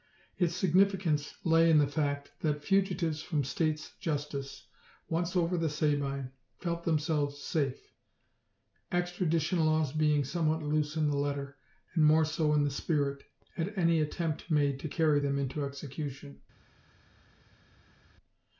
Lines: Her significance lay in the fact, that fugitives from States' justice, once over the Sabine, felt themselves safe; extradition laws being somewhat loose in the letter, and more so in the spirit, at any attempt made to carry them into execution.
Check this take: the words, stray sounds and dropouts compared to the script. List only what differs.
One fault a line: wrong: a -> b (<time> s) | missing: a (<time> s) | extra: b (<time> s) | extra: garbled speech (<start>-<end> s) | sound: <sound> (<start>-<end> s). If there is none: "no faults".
wrong: Her -> Its (0.3 s)